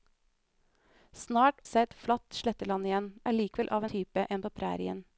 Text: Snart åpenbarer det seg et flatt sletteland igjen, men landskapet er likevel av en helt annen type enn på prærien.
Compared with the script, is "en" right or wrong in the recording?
wrong